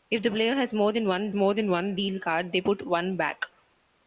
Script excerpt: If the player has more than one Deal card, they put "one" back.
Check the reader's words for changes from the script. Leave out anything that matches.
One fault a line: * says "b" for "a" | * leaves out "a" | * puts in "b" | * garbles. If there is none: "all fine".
* puts in "more than one"